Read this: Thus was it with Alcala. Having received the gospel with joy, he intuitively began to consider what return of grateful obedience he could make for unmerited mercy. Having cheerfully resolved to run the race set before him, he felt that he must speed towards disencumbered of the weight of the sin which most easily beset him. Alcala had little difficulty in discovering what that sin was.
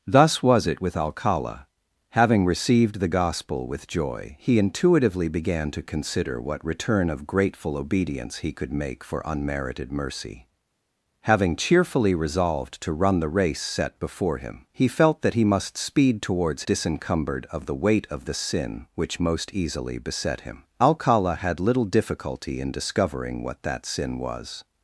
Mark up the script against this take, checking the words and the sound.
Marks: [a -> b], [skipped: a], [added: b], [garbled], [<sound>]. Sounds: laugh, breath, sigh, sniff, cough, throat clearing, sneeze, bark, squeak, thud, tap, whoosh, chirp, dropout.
Thus was it with Alcala. Having received the gospel with joy, he intuitively began to consider what return of grateful obedience he could make for unmerited mercy. Having cheerfully resolved to run the race set before him, he felt that he must speed towards disencumbered of the weight of the sin which most easily beset him. Alcala had little difficulty in discovering what that sin was.